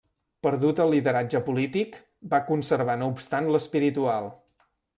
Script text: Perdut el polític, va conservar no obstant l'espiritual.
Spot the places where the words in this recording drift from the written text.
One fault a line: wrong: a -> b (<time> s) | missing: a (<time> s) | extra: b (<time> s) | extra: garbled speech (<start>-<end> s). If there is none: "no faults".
extra: lideratge (0.9 s)